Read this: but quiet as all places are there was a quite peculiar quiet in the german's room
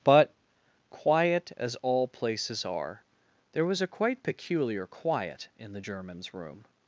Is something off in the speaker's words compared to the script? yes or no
no